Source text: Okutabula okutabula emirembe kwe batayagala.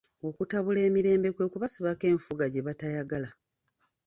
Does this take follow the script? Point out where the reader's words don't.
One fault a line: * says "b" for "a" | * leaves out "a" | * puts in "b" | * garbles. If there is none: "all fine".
* leaves out "okutabula"
* puts in "kubasibako enfuga gye"